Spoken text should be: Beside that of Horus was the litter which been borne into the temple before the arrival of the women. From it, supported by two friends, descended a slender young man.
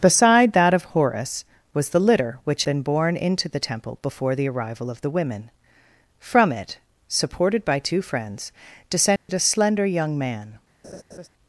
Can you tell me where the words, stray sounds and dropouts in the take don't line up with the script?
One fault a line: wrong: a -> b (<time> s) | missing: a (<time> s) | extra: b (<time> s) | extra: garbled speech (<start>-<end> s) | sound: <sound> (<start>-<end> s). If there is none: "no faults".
sound: dropout (9.2-9.3 s)
sound: laugh (10.8-11.3 s)